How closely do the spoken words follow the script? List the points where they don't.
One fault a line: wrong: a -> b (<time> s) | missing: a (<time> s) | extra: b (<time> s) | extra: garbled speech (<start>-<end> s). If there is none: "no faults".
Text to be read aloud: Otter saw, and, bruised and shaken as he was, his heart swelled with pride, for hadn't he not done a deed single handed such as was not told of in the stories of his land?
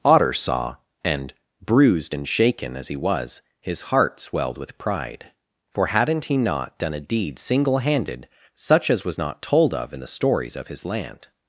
no faults